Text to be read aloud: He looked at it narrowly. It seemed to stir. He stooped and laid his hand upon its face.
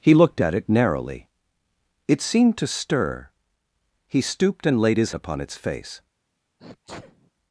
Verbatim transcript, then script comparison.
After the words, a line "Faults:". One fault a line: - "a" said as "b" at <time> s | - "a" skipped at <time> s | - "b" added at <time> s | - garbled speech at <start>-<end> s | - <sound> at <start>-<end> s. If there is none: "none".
He looked at it narrowly. It seemed to stir. He stooped and laid his upon its face.
Faults:
- "hand" skipped at 5.1 s
- sneeze at 6.6-7.3 s